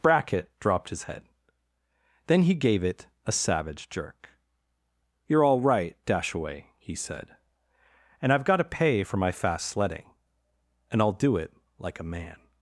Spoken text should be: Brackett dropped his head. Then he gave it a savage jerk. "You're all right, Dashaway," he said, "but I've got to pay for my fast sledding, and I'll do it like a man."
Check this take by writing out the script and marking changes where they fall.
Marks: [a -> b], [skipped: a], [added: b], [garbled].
Brackett dropped his head. Then he gave it a savage jerk. "You're all right, Dashaway," he said, ["but -> and] I've got to pay for my fast sledding, and I'll do it like a man."